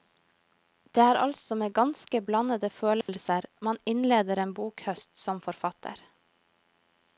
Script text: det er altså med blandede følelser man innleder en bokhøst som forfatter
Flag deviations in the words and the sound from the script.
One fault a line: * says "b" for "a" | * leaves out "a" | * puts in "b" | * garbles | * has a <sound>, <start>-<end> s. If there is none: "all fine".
* puts in "ganske"
* has a dropout, 3.0-3.1 s